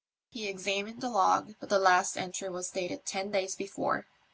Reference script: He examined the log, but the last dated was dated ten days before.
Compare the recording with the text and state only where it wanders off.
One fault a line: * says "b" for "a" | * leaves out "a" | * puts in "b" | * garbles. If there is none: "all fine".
* says "entry" for "dated"